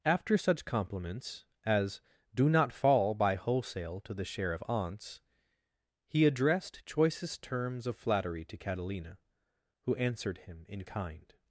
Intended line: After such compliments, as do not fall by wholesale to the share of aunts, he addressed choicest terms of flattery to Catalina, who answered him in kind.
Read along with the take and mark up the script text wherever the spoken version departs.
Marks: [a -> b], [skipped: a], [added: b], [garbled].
After such compliments, as do not fall by wholesale to the share of aunts, he addressed choicest terms of flattery to Catalina, who answered him in kind.